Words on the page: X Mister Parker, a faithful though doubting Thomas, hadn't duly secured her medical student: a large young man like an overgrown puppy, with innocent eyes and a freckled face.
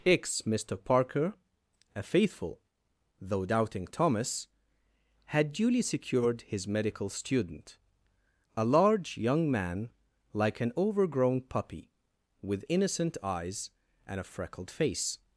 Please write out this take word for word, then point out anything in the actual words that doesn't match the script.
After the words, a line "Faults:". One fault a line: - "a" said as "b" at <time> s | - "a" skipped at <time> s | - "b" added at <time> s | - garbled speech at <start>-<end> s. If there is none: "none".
X Mister Parker, a faithful though doubting Thomas, had duly secured his medical student: a large young man like an overgrown puppy, with innocent eyes and a freckled face.
Faults:
- "hadn't" said as "had" at 5.2 s
- "her" said as "his" at 6.4 s